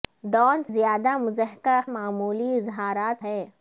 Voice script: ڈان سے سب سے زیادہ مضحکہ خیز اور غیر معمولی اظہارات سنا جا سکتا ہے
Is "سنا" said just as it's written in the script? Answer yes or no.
no